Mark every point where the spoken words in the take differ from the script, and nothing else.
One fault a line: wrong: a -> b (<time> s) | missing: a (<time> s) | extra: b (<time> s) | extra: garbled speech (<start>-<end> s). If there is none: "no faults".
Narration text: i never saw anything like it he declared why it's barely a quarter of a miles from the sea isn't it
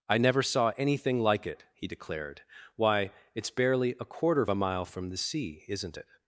wrong: miles -> mile (4.5 s)